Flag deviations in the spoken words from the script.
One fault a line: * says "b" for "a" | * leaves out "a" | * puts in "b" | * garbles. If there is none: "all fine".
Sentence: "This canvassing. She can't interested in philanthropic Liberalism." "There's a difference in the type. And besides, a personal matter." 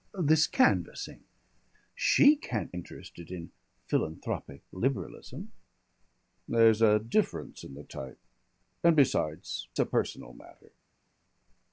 all fine